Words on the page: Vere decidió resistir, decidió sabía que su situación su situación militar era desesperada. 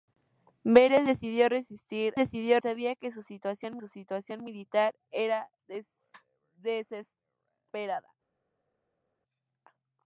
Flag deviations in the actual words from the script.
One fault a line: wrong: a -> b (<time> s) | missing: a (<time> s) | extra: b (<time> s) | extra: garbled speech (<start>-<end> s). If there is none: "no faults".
no faults